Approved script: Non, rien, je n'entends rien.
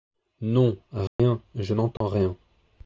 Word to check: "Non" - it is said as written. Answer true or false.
true